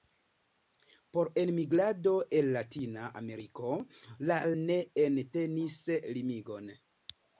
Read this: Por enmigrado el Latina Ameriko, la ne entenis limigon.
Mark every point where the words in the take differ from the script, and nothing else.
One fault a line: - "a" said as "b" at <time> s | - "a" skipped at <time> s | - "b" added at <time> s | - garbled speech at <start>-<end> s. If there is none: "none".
none